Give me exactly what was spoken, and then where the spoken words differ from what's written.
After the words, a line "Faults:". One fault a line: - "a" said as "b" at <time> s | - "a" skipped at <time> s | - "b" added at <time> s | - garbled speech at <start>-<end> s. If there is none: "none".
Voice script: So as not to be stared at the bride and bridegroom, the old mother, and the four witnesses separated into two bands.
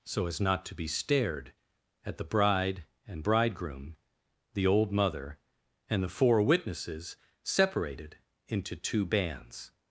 So as not to be stared at the bride and bridegroom, the old mother, and the four witnesses separated into two bands.
Faults:
none